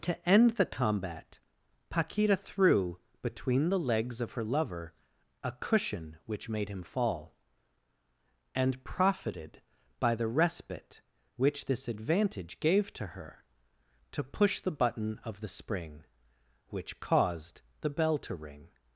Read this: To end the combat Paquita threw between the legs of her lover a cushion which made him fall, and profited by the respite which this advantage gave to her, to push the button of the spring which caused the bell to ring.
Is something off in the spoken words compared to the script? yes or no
no